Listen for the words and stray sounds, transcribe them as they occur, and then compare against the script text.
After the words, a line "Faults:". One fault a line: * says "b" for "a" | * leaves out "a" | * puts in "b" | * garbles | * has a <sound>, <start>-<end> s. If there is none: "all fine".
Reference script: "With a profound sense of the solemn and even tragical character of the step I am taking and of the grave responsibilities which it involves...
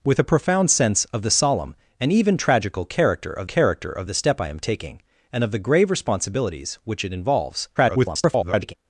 "With a profound sense of the solemn and even tragical character of character of the step I am taking and of the grave responsibilities which it involves... [garbled]
Faults:
* puts in "character of"
* garbles